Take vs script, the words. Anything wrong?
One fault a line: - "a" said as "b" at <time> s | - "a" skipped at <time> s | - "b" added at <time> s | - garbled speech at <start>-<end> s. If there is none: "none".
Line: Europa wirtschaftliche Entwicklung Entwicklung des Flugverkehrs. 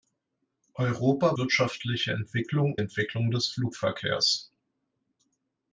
none